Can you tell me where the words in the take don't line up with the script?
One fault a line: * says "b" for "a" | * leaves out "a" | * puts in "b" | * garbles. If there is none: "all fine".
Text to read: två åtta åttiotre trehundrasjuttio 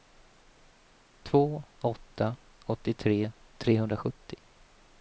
all fine